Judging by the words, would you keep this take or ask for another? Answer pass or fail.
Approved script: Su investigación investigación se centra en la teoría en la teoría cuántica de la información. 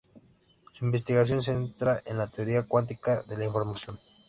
fail